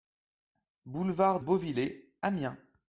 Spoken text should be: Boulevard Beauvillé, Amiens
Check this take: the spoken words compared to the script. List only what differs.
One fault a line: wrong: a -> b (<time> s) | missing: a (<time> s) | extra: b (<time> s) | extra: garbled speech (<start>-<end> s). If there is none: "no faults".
no faults